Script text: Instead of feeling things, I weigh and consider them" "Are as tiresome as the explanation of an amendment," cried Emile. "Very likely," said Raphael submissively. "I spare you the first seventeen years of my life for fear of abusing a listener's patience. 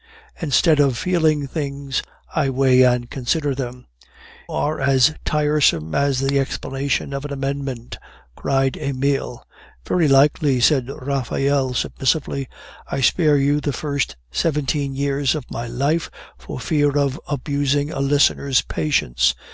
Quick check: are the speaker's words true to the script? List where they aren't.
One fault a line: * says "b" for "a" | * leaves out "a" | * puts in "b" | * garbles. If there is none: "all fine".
all fine